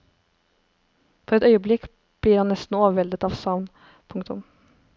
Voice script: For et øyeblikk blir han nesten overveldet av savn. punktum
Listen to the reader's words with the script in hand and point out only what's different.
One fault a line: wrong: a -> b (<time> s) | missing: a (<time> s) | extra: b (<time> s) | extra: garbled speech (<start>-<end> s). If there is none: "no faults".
no faults